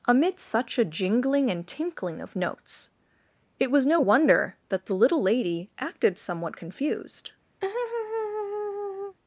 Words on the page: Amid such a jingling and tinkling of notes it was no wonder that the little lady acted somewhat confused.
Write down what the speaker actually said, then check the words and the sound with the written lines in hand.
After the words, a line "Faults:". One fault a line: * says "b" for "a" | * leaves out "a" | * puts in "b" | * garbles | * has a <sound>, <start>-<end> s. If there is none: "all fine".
Amid such a jingling and tinkling of notes it was no wonder that the little lady acted somewhat confused.
Faults:
* has a laugh, 7.6-9.2 s